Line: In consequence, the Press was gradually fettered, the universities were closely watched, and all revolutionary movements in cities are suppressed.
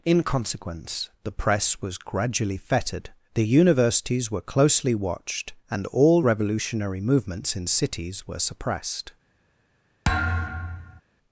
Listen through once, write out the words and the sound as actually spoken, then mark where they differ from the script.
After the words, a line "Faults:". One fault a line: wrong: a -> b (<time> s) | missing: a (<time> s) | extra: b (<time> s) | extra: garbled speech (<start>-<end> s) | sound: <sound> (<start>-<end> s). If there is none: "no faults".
In consequence, the Press was gradually fettered, the universities were closely watched, and all revolutionary movements in cities were suppressed.
Faults:
wrong: are -> were (8.3 s)
sound: thud (10.0-11.0 s)